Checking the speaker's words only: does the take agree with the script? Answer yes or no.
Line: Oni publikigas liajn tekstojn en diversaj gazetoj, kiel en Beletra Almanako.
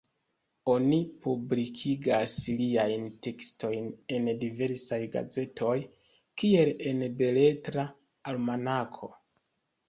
yes